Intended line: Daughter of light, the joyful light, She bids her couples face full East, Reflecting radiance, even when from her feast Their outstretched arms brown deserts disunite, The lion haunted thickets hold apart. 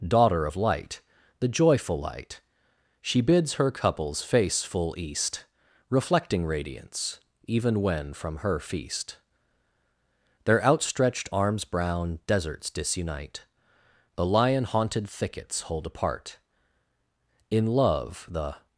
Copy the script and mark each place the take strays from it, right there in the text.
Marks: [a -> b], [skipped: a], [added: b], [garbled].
Daughter of light, the joyful light, She bids her couples face full East, Reflecting radiance, even when from her feast Their outstretched arms brown deserts disunite, The lion haunted thickets hold apart. [added: In love the]